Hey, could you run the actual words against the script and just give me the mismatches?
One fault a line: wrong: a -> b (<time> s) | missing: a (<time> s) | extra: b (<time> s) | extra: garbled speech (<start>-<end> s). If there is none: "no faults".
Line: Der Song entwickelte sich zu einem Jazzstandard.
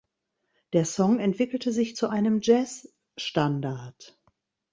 no faults